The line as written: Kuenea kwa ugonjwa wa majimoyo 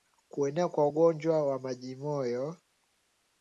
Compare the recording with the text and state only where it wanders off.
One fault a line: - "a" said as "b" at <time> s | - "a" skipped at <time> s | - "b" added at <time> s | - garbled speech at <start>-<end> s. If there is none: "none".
none